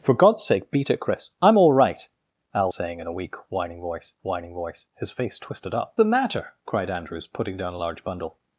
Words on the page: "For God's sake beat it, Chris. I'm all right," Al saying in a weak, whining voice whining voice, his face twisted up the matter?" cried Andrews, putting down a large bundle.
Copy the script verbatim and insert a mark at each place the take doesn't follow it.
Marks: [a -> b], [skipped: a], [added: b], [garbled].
"For God's sake beat it, Chris. I'm all right," Al saying in a weak, whining voice whining voice, his face twisted up the matter?" cried Andrews, putting down a large bundle.